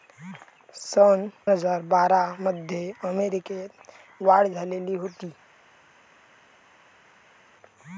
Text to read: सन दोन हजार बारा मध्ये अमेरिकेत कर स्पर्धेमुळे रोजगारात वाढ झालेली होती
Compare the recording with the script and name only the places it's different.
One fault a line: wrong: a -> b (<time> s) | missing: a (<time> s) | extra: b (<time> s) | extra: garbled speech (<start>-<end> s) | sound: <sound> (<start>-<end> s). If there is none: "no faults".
missing: दोन (1.3 s)
missing: कर स्पर्धेमुळे रोजगारात (3.7 s)